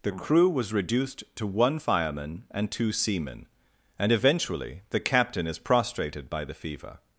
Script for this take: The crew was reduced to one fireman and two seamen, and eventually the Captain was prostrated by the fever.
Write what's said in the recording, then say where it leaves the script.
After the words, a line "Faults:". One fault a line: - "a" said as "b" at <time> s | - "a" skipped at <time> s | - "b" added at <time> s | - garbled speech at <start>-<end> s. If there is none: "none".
The crew was reduced to one fireman and two seamen, and eventually the Captain is prostrated by the fever.
Faults:
- "was" said as "is" at 5.5 s